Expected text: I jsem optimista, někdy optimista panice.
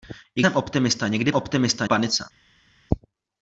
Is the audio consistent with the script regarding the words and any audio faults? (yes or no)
yes